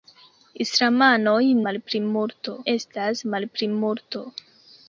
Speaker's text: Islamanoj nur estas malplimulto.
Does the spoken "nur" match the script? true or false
false